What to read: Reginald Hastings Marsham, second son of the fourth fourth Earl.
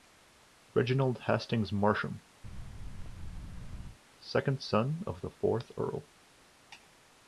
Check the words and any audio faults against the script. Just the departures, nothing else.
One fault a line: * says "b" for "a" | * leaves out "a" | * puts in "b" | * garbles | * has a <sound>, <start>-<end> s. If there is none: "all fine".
* has a thud, 2.4-4.0 s
* leaves out "fourth"